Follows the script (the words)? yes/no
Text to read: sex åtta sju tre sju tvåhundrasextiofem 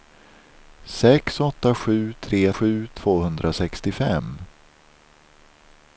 yes